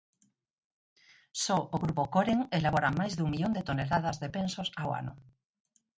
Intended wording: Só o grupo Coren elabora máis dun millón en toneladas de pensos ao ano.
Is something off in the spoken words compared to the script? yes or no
yes